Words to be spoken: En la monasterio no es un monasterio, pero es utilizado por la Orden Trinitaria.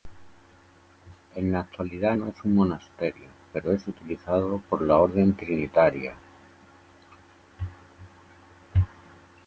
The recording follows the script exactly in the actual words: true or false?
false